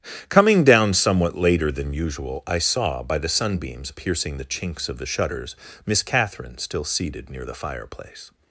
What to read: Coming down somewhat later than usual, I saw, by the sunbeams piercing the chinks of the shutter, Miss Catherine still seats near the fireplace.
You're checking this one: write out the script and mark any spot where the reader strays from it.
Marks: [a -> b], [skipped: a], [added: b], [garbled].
Coming down somewhat later than usual, I saw, by the sunbeams piercing the chinks of the [shutter, -> shutters] Miss Catherine still [seats -> seated] near the fireplace.